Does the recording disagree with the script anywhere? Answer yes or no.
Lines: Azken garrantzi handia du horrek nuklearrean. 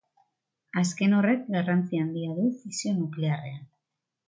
yes